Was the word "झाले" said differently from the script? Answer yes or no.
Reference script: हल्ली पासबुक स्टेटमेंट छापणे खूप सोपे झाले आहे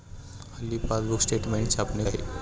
yes